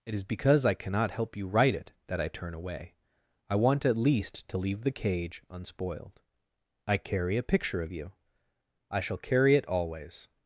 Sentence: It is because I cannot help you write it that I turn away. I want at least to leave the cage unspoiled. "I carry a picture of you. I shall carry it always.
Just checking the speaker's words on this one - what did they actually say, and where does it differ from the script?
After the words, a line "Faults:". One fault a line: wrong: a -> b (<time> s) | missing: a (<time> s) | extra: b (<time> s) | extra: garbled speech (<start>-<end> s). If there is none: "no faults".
It is because I cannot help you write it that I turn away. I want at least to leave the cage unspoiled. "I carry a picture of you. I shall carry it always.
Faults:
no faults